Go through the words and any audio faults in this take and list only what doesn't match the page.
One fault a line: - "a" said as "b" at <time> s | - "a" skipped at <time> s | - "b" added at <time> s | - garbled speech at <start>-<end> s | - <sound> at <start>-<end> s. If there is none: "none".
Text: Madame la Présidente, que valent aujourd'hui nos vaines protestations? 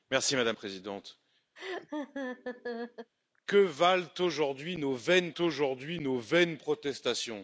- "la" skipped at 0.6 s
- laugh at 1.6-3.1 s
- "aujourd'hui nos vaines" added at 5.4 s